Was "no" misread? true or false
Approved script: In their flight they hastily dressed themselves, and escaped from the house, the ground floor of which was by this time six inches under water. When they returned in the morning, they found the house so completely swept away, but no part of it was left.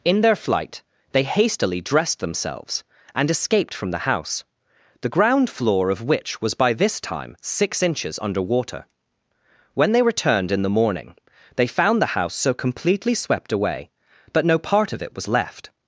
false